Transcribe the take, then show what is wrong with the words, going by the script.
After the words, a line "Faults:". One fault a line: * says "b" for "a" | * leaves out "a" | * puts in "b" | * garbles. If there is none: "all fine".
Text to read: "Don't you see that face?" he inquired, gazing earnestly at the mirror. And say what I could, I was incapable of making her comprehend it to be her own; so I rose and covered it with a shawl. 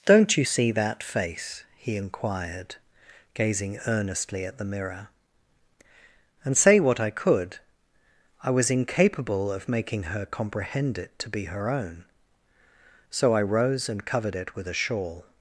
"Don't you see that face?" he inquired, gazing earnestly at the mirror. And say what I could, I was incapable of making her comprehend it to be her own; so I rose and covered it with a shawl.
Faults:
all fine